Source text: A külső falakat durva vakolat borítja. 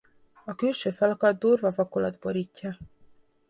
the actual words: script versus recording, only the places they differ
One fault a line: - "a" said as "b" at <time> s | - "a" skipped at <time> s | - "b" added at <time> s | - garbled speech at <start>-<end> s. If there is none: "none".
none